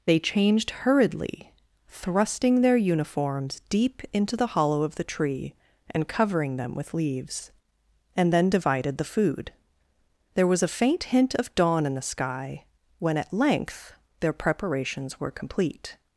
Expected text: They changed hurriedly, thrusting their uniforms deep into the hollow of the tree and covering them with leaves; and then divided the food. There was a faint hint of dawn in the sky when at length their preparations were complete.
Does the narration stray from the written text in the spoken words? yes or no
no